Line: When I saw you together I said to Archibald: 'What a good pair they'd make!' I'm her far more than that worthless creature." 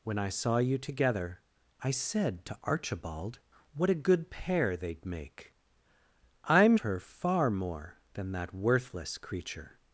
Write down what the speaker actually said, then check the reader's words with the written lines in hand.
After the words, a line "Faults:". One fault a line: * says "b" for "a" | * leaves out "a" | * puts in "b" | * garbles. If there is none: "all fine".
When I saw you together I said to Archibald: 'What a good pair they'd make!' I'm her far more than that worthless creature."
Faults:
all fine